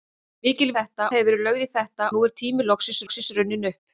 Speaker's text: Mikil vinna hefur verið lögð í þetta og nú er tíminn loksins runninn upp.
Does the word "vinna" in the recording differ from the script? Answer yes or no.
yes